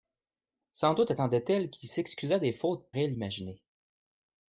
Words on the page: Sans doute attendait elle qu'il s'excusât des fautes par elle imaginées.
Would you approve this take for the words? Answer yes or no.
no